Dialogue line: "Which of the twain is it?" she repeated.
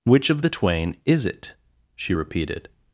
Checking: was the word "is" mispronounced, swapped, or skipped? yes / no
no